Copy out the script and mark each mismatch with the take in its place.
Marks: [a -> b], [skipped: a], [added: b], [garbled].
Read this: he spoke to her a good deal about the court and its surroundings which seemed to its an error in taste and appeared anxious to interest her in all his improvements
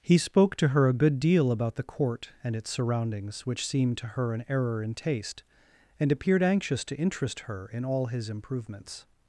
he spoke to her a good deal about the court and its surroundings which seemed to [its -> her] an error in taste and appeared anxious to interest her in all his improvements